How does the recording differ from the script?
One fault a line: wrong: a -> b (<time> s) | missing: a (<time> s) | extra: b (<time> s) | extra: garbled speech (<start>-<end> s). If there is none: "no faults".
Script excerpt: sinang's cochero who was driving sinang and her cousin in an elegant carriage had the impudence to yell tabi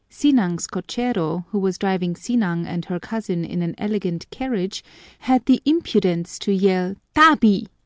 no faults